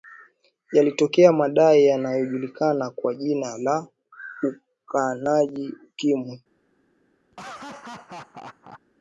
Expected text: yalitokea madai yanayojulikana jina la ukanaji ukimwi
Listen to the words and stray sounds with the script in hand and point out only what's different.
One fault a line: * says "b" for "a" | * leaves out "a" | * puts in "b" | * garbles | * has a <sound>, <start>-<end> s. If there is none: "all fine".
* puts in "kwa"
* has a laugh, 7.3-8.8 s